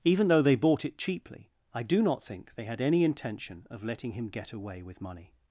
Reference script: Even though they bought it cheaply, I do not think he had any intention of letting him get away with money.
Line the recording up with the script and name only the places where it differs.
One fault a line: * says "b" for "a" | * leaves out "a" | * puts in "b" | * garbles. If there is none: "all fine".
* says "they" for "he"